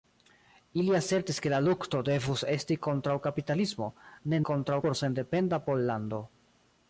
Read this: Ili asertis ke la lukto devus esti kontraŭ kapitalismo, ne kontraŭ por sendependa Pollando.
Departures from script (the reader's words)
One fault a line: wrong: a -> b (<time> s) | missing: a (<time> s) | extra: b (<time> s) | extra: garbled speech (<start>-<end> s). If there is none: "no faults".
no faults